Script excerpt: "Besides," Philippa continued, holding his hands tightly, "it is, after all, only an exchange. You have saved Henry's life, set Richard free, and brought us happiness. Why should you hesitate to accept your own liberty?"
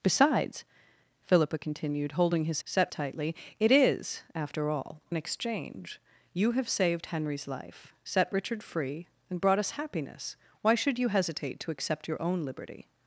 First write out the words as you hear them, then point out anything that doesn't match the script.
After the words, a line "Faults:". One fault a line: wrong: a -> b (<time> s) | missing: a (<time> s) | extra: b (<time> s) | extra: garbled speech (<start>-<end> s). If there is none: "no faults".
"Besides," Philippa continued, holding his set tightly, "it is, after all, an exchange. You have saved Henry's life, set Richard free, and brought us happiness. Why should you hesitate to accept your own liberty?"
Faults:
wrong: hands -> set (2.6 s)
missing: only (5.0 s)